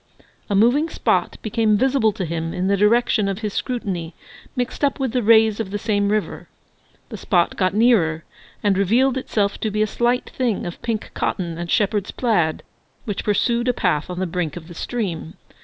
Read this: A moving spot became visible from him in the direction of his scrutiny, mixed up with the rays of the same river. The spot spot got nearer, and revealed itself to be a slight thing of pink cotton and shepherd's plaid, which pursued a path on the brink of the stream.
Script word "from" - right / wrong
wrong